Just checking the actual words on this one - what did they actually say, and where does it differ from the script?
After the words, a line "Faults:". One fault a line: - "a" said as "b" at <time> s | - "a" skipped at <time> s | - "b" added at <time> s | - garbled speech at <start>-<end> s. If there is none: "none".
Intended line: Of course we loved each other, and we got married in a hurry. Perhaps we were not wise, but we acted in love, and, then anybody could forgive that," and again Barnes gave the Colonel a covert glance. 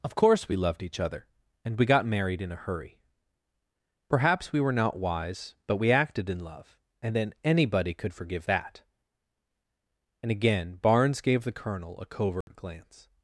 Of course we loved each other, and we got married in a hurry. Perhaps we were not wise, but we acted in love, and, then anybody could forgive that," and again Barnes gave the Colonel a covert glance.
Faults:
none